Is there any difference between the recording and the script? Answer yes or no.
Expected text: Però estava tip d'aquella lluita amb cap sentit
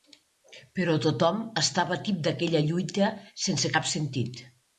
yes